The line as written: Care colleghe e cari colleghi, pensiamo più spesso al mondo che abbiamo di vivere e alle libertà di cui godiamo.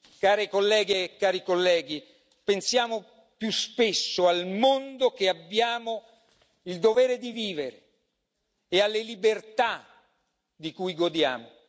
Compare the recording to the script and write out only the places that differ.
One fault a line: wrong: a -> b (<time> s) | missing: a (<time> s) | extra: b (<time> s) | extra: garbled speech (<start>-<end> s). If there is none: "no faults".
extra: il dovere (6.6 s)